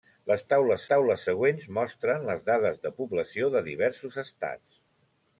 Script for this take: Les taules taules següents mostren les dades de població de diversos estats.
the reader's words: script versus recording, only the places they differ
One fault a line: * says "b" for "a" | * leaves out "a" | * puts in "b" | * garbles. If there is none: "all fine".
all fine